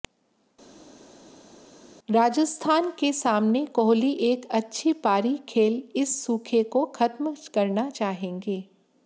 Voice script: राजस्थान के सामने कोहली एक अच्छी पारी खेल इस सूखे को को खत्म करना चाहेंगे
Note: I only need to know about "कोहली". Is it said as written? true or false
true